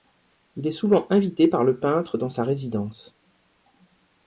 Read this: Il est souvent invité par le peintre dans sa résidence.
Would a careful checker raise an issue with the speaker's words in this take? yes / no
no